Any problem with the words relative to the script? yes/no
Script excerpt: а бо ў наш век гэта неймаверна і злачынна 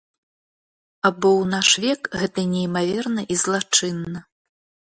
no